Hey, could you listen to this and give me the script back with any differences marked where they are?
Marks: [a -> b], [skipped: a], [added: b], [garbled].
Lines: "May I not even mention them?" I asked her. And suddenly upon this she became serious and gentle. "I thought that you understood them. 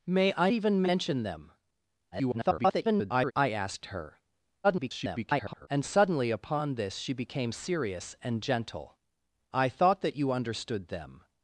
"May I [skipped: not] even mention them?" [garbled] I asked her. [garbled] And suddenly upon this she became serious and gentle. "I thought that you understood them.